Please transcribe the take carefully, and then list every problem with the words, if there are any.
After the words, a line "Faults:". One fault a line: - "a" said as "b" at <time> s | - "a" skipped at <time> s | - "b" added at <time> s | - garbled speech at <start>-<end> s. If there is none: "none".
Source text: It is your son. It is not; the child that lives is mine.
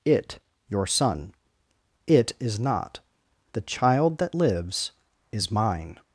It your son. It is not; the child that lives is mine.
Faults:
- "is" skipped at 0.4 s